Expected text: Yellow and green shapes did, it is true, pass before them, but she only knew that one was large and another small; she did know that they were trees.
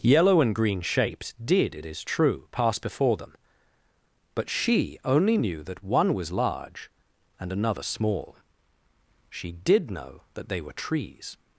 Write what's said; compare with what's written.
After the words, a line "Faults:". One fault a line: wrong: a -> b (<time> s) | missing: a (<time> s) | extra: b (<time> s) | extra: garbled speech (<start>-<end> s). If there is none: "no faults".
Yellow and green shapes did, it is true, pass before them, but she only knew that one was large and another small; she did know that they were trees.
Faults:
no faults